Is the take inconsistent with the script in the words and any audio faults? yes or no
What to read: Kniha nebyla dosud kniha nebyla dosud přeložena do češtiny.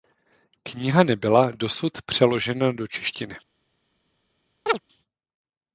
yes